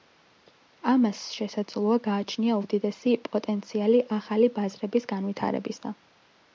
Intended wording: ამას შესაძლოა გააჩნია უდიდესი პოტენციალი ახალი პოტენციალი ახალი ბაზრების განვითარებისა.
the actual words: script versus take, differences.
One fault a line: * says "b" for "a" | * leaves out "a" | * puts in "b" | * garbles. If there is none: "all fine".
* leaves out "პოტენციალი ახალი"